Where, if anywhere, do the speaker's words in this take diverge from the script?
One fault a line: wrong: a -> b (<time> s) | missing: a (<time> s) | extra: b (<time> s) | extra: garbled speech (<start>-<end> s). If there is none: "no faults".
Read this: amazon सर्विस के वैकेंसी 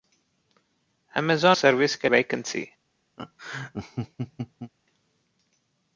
no faults